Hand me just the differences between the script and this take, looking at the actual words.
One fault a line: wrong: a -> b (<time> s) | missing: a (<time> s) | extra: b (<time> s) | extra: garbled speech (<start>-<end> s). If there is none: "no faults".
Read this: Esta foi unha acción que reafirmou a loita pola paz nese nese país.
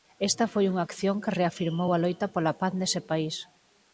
missing: nese (3.0 s)